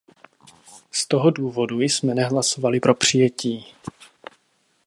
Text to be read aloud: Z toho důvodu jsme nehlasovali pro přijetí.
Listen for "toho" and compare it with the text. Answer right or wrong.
right